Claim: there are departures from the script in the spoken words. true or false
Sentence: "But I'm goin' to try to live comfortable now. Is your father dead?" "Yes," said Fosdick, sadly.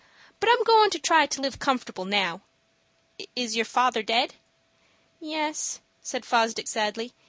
false